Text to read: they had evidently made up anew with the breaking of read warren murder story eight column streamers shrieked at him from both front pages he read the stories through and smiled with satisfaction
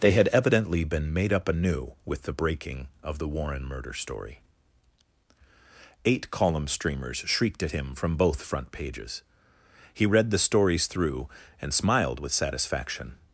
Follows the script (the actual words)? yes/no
no